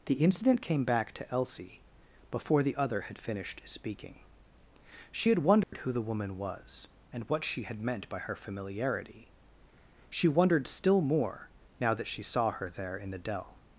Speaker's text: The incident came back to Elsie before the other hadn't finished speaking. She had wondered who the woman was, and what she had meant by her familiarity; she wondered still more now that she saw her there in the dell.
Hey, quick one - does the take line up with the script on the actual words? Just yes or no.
no